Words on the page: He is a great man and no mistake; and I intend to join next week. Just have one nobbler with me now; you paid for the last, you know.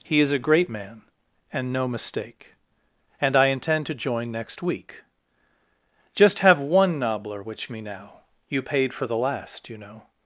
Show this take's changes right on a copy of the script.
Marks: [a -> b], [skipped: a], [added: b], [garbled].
He is a great man and no mistake; and I intend to join next week. Just have one nobbler [with -> which] me now; you paid for the last, you know.